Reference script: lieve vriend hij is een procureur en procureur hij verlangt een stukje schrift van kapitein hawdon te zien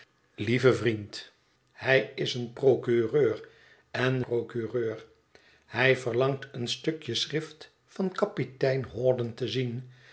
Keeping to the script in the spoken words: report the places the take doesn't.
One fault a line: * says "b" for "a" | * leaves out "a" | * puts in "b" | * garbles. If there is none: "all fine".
all fine